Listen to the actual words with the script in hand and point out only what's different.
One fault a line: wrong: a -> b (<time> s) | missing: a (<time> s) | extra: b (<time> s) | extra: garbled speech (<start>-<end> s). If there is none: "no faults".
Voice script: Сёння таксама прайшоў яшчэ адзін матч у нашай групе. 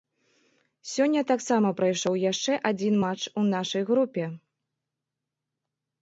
no faults